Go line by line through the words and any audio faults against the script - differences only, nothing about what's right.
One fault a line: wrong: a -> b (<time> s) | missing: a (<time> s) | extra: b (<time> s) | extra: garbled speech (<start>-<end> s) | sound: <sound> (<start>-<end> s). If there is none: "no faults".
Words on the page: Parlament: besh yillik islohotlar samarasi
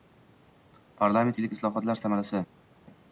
missing: besh (1.4 s)